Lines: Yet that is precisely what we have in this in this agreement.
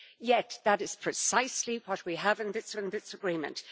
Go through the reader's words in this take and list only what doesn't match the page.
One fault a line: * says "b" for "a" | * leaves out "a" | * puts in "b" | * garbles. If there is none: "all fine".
all fine